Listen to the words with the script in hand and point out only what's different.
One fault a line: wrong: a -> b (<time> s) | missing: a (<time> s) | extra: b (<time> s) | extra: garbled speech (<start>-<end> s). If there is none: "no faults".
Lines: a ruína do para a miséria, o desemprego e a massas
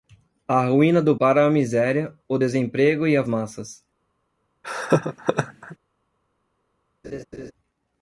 no faults